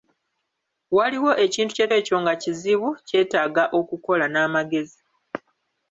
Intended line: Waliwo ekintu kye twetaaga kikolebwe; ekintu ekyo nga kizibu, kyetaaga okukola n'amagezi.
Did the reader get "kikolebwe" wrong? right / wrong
wrong